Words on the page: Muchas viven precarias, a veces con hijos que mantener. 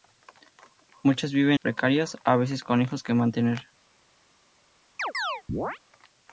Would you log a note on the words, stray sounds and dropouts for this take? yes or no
yes